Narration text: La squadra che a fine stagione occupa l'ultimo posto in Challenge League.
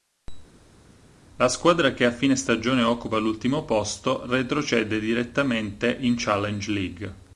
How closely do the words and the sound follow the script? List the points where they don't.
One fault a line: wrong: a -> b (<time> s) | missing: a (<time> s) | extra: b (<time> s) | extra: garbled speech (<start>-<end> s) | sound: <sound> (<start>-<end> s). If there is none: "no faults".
extra: retrocede direttamente (4.3 s)